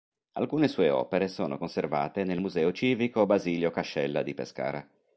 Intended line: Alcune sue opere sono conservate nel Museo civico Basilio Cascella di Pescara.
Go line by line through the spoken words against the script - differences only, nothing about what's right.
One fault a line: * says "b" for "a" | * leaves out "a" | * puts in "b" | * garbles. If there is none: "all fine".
all fine